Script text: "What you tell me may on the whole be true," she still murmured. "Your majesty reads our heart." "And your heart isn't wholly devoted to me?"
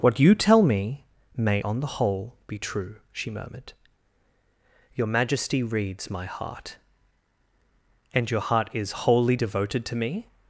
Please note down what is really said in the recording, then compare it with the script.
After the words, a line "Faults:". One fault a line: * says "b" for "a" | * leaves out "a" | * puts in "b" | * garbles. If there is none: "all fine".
"What you tell me may on the whole be true," she murmured. "Your majesty reads my heart." "And your heart is wholly devoted to me?"
Faults:
* leaves out "still"
* says "my" for "our"
* says "is" for "isn't"